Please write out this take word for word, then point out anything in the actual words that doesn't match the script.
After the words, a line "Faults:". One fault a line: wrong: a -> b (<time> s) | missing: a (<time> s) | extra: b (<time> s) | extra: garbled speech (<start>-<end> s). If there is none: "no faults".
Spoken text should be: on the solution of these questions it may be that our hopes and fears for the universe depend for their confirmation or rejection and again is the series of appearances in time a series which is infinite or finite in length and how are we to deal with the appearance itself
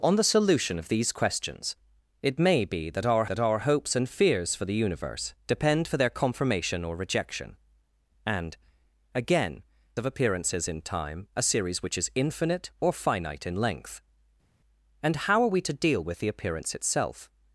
on the solution of these questions it may be that our that our hopes and fears for the universe depend for their confirmation or rejection and again of appearances in time a series which is infinite or finite in length and how are we to deal with the appearance itself
Faults:
extra: that our (3.2 s)
missing: is the series (9.6 s)